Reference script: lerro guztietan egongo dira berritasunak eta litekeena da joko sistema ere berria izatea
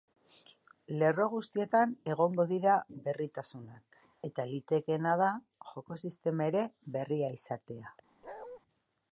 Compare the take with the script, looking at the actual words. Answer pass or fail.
pass